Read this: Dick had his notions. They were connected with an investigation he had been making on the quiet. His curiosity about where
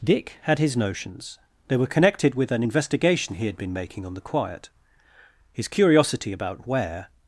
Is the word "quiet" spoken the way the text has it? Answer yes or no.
yes